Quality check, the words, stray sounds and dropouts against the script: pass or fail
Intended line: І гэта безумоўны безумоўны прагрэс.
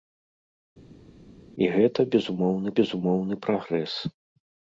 pass